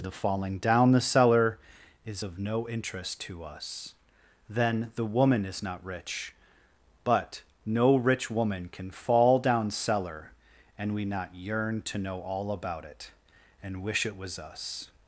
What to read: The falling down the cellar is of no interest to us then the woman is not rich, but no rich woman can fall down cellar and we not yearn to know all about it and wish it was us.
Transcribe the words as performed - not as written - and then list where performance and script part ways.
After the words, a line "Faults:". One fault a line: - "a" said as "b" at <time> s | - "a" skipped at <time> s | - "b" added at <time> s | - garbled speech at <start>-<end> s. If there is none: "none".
The falling down the cellar is of no interest to us then the woman is not rich, but no rich woman can fall down cellar and we not yearn to know all about it and wish it was us.
Faults:
none